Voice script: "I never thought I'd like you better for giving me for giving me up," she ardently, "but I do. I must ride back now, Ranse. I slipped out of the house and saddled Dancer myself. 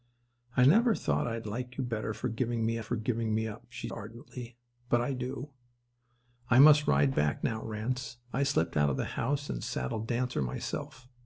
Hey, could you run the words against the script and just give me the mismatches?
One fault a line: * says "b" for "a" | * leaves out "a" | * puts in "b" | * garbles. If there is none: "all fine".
all fine